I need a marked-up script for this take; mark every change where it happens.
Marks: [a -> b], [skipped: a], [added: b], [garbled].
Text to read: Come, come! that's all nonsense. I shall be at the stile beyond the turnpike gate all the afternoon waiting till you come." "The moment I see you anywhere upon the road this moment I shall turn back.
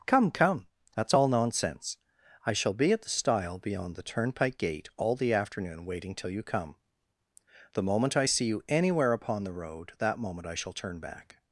Come, come! that's all nonsense. I shall be at the stile beyond the turnpike gate all the afternoon waiting till you come." "The moment I see you anywhere upon the road [this -> that] moment I shall turn back.